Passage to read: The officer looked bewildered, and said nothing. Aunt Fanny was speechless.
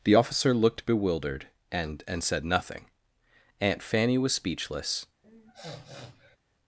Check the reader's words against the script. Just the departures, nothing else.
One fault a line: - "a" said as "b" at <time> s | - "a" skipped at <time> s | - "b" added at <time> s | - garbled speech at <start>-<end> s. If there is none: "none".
- "and" added at 2.1 s